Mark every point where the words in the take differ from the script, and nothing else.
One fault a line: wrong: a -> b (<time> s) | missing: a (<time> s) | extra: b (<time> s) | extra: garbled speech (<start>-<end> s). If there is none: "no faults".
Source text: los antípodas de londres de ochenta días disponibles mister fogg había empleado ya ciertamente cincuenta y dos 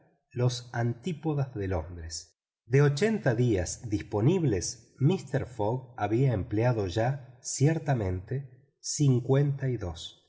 no faults